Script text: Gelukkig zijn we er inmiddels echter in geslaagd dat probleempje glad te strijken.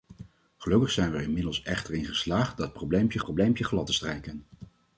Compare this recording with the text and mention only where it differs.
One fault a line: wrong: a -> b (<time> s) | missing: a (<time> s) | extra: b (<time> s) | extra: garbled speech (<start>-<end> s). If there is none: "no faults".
extra: probleempje (3.2 s)